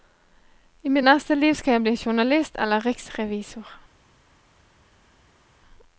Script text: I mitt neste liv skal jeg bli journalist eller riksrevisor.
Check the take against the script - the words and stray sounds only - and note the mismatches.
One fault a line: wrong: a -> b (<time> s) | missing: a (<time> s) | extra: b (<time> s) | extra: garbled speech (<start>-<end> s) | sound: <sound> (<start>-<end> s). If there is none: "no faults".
no faults